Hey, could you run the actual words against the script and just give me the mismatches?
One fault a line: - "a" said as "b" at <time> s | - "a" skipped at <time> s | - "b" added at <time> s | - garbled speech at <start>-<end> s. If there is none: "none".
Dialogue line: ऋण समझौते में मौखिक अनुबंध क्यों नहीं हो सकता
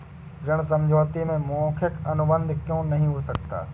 none